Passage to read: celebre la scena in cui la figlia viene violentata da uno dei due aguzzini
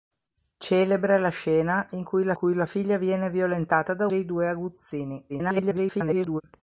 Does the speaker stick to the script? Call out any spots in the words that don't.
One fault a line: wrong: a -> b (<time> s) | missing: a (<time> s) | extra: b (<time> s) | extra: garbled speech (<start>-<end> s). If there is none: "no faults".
extra: cui la (2.3 s)
missing: uno (4.1 s)
extra: garbled speech (5.3-6.4 s)